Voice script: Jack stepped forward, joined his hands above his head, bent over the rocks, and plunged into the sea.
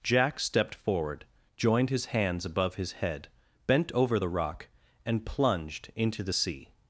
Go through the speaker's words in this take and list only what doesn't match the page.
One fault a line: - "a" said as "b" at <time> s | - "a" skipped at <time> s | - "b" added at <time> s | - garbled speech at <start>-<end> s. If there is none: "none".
- "rocks" said as "rock" at 4.3 s